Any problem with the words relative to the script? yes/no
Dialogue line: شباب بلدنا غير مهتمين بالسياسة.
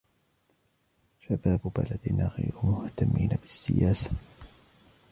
no